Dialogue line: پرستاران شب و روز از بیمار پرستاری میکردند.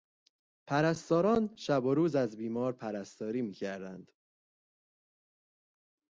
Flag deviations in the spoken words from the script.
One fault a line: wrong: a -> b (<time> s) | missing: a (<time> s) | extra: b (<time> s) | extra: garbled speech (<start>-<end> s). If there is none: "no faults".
no faults